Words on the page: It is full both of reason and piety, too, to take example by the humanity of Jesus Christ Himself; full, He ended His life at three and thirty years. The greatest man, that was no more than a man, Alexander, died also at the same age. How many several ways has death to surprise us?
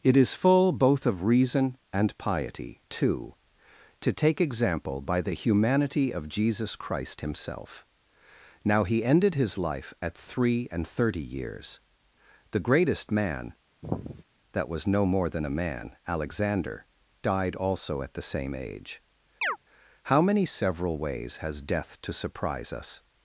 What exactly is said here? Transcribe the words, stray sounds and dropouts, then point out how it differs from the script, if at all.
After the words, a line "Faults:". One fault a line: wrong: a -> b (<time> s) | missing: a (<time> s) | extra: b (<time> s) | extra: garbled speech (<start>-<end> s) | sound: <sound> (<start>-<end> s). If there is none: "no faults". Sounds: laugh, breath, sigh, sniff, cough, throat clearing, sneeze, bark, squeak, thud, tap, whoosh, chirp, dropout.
It is full both of reason and piety, too, to take example by the humanity of Jesus Christ Himself; now, He ended His life at three and thirty years. The greatest man, that was no more than a man, Alexander, died also at the same age. How many several ways has death to surprise us?
Faults:
wrong: full -> now (8.6 s)
sound: sigh (13.8-14.2 s)
sound: chirp (19.4-19.6 s)